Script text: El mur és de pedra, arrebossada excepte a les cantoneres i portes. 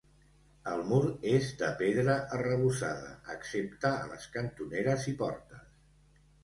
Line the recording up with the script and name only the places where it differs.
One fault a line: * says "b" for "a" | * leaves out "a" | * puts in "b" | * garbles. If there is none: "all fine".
all fine